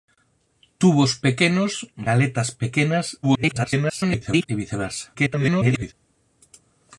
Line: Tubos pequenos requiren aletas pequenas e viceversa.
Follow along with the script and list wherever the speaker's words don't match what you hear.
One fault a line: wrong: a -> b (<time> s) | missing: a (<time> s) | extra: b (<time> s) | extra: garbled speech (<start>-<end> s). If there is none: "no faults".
missing: requiren (1.7 s)
extra: garbled speech (3.2-4.5 s)
extra: garbled speech (5.1-5.9 s)